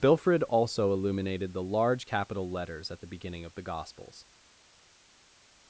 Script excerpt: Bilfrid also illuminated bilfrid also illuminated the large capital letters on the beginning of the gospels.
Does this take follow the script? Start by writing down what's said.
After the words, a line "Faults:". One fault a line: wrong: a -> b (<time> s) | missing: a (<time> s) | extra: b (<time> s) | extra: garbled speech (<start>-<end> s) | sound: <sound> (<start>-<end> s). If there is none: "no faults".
Bilfrid also illuminated the large capital letters at the beginning of the gospels.
Faults:
missing: bilfrid also illuminated (1.5 s)
wrong: on -> at (2.9 s)